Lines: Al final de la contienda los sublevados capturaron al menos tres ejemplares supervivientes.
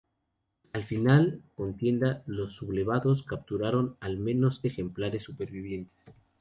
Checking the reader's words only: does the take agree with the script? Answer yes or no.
no